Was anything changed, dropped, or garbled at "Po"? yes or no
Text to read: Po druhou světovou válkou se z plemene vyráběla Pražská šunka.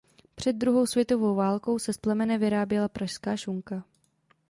yes